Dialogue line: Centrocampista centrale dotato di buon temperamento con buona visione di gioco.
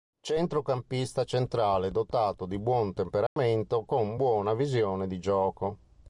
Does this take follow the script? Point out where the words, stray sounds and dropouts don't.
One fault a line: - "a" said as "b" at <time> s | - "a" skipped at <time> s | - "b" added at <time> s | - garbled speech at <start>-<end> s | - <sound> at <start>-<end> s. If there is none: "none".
- dropout at 3.3-3.4 s